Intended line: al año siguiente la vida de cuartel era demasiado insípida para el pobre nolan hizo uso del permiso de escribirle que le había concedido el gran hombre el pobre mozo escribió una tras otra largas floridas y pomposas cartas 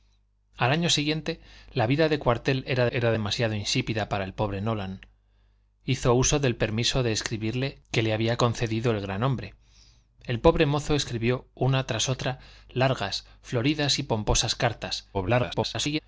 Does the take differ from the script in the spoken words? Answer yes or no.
yes